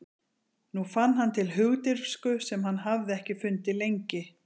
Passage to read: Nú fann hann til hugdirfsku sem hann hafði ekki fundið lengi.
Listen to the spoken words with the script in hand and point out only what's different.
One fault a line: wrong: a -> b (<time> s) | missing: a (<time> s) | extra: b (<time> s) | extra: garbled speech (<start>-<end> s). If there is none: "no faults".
no faults